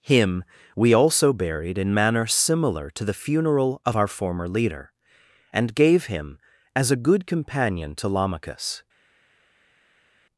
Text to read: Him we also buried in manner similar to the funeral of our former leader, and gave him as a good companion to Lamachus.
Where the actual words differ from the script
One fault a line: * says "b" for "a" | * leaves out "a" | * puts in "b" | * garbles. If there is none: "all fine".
all fine